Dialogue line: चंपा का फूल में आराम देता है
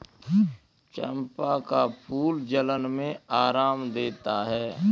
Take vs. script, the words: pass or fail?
fail